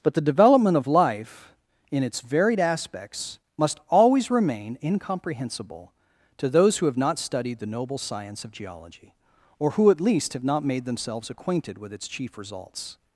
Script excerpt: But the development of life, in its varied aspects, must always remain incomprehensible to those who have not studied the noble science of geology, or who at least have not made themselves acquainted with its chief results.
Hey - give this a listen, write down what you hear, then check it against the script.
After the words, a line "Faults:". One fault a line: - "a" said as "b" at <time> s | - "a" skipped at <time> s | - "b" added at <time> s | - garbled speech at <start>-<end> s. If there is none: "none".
But the development of life, in its varied aspects, must always remain incomprehensible to those who have not studied the noble science of geology, or who at least have not made themselves acquainted with its chief results.
Faults:
none